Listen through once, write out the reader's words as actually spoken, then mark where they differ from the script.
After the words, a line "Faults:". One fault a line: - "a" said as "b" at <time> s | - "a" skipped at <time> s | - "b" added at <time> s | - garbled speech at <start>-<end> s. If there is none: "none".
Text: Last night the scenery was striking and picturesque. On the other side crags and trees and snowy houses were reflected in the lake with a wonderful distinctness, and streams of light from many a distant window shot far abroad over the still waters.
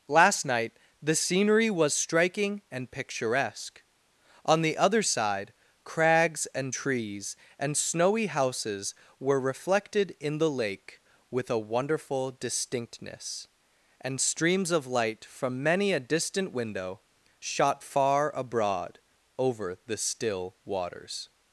Last night the scenery was striking and picturesque. On the other side crags and trees and snowy houses were reflected in the lake with a wonderful distinctness, and streams of light from many a distant window shot far abroad over the still waters.
Faults:
none